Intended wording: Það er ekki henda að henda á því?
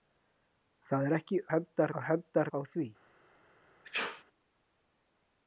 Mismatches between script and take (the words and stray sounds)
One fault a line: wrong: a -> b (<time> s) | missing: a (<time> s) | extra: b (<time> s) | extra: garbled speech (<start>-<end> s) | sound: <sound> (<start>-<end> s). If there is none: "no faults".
sound: sneeze (3.8-4.2 s)